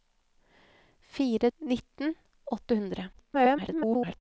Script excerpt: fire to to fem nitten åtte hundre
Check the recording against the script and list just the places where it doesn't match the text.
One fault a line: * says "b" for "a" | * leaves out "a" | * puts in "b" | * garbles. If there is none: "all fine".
* leaves out "to to fem"
* garbles